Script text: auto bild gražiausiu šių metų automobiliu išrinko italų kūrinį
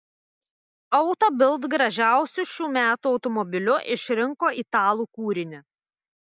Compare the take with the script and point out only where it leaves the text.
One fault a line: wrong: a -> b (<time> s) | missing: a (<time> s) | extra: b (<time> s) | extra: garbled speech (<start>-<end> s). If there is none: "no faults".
no faults